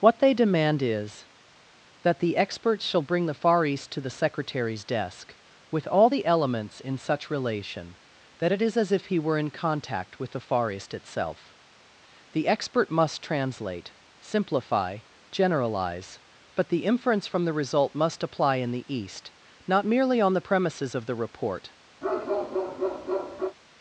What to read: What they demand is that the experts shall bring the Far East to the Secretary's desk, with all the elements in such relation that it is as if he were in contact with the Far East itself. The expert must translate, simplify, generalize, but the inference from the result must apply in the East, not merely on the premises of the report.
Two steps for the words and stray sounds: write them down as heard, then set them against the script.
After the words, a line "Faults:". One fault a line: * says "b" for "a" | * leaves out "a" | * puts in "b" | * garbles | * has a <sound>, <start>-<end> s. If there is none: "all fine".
What they demand is that the experts shall bring the Far East to the Secretary's desk, with all the elements in such relation that it is as if he were in contact with the Far East itself. The expert must translate, simplify, generalize, but the inference from the result must apply in the East, not merely on the premises of the report.
Faults:
* has a bark, 22.0-23.6 s